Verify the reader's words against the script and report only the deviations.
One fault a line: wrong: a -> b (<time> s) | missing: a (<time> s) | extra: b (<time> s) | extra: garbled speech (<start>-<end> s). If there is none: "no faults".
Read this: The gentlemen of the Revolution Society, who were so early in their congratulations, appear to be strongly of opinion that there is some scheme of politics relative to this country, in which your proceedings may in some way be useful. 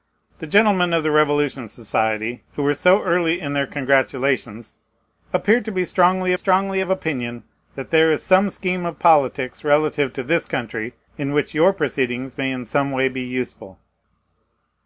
extra: strongly (6.3 s)